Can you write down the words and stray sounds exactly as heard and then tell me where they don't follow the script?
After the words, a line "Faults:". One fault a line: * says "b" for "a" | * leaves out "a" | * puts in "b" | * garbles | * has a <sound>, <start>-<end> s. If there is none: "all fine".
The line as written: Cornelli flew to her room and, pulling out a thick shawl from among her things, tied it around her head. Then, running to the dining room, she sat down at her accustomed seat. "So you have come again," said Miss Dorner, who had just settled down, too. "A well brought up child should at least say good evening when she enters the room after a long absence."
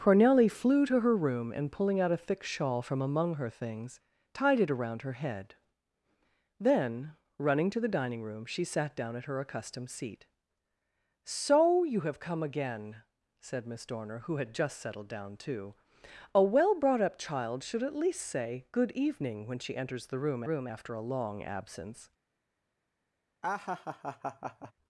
Cornelli flew to her room and, pulling out a thick shawl from among her things, tied it around her head. Then, running to the dining room, she sat down at her accustomed seat. "So you have come again," said Miss Dorner, who had just settled down, too. "A well brought up child should at least say good evening when she enters the room room after a long absence."
Faults:
* puts in "room"
* has a laugh, 23.4-24.7 s